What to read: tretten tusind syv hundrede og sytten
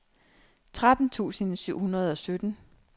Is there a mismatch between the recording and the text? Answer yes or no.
no